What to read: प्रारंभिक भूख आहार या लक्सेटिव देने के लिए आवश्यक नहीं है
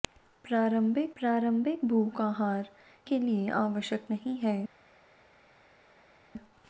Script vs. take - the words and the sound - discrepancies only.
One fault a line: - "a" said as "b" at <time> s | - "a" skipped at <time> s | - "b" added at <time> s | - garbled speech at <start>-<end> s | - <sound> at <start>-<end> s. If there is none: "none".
- "प्रारंभिक" added at 1.2 s
- "या लक्सेटिव देने" skipped at 2.7 s